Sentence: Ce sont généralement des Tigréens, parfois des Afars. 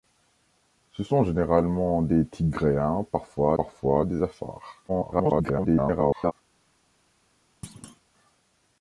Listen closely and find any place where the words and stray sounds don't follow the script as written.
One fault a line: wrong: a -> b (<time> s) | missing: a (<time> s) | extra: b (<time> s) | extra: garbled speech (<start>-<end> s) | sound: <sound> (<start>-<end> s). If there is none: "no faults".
extra: parfois (3.6 s)
extra: garbled speech (4.9-6.3 s)
sound: thud (7.6-8.0 s)